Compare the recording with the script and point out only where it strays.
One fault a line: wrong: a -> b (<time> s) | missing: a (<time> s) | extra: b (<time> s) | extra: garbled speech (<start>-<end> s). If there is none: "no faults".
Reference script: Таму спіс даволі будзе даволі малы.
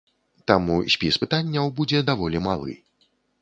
wrong: даволі -> пытанняў (1.2 s)